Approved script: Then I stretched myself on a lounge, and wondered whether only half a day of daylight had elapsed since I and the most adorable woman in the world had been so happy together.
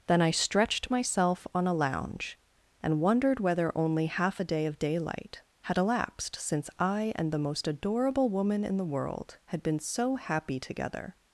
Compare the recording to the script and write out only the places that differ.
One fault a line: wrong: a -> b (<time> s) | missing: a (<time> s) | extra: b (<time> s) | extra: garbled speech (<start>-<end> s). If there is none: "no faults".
no faults